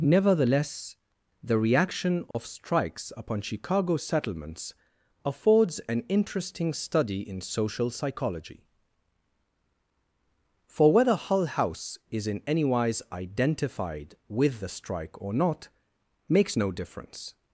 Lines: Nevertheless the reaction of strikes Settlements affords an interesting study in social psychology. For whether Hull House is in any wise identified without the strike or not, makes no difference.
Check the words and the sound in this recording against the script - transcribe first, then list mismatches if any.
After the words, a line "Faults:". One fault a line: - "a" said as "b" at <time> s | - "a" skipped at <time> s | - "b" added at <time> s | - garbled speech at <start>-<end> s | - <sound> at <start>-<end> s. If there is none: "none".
Nevertheless the reaction of strikes upon Chicago Settlements affords an interesting study in social psychology. For whether Hull House is in any wise identified with the strike or not, makes no difference.
Faults:
- dropout at 2.3-2.3 s
- "upon Chicago" added at 3.1 s
- "without" said as "with" at 14.3 s